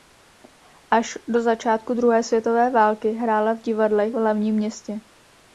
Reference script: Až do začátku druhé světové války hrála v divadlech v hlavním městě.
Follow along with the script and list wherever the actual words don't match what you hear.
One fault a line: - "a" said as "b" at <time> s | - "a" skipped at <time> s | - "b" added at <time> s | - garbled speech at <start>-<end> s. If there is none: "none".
none